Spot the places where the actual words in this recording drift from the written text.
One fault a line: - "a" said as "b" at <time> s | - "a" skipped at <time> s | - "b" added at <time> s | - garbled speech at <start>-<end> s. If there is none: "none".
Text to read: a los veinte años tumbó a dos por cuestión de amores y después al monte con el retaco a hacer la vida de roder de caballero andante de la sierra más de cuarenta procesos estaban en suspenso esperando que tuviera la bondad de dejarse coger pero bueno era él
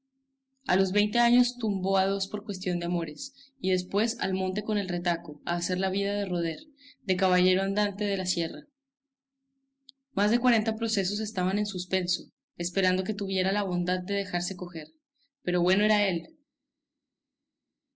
none